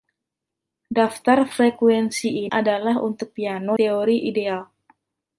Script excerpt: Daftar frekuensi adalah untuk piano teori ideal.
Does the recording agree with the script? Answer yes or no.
yes